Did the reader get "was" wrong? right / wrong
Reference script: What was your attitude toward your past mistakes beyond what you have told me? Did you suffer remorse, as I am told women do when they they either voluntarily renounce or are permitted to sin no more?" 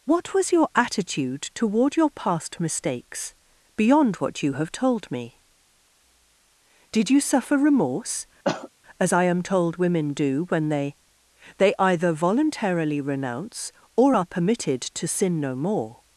right